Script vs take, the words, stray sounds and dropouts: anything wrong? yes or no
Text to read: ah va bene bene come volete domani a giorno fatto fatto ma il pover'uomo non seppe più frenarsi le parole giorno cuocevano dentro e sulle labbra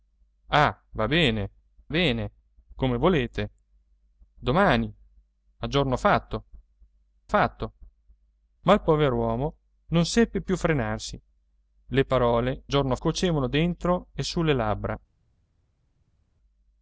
no